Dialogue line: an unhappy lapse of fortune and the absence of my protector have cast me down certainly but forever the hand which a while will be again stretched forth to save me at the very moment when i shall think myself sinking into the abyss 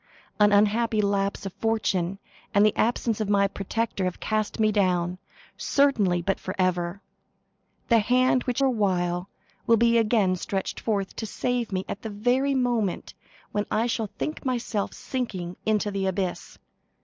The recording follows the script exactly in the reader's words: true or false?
true